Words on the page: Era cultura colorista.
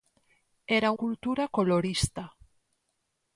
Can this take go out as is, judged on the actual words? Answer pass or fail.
pass